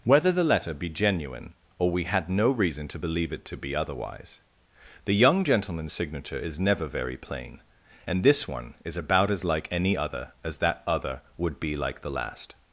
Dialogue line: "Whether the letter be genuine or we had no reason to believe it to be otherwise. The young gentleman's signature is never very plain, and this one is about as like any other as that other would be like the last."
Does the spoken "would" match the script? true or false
true